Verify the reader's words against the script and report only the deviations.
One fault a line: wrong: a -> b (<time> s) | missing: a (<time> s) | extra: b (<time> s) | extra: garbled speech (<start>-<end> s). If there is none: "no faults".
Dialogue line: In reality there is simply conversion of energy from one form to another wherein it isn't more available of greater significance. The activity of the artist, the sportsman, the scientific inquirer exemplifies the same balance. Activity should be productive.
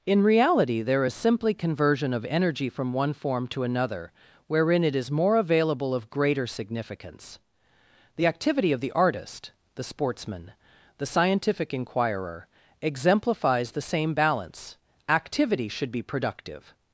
wrong: isn't -> is (5.0 s)